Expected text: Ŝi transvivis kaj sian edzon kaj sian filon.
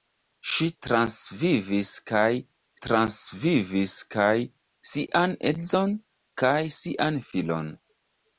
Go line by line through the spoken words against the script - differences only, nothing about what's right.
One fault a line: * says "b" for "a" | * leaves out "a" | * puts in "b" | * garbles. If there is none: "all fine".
* puts in "transvivis kaj"